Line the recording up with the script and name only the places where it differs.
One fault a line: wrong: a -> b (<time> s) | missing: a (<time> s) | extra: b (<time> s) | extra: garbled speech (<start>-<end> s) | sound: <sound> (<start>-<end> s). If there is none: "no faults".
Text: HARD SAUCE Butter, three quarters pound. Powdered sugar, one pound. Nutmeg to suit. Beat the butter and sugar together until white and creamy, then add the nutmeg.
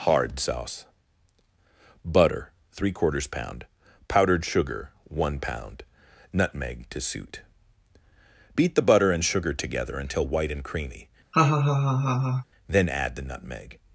sound: laugh (11.3-12.4 s)